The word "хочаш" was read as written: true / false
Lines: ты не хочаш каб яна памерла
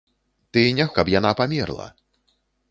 false